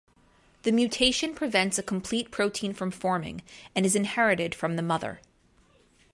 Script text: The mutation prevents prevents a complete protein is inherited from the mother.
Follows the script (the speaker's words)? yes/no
no